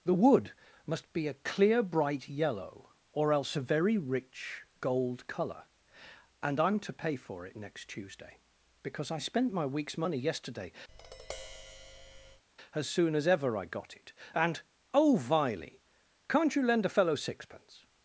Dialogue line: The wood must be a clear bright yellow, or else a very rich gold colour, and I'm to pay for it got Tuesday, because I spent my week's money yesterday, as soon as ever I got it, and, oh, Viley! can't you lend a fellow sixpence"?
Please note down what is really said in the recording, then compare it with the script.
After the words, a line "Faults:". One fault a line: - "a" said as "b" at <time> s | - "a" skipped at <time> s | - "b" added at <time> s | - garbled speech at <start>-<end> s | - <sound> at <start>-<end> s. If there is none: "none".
The wood must be a clear bright yellow, or else a very rich gold colour, and I'm to pay for it next Tuesday, because I spent my week's money yesterday, as soon as ever I got it, and, oh, Viley! can't you lend a fellow sixpence"?
Faults:
- "got" said as "next" at 7.5 s
- tap at 10.9-12.4 s